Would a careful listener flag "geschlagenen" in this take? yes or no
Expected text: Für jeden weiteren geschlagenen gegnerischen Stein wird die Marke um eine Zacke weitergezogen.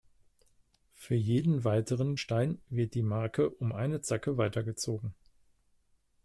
yes